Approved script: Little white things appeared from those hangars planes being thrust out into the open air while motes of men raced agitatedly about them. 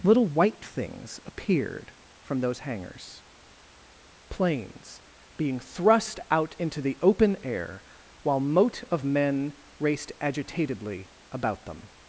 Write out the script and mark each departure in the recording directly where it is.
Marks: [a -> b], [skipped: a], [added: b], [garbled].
Little white things appeared from those hangars planes being thrust out into the open air while [motes -> mote] of men raced agitatedly about them.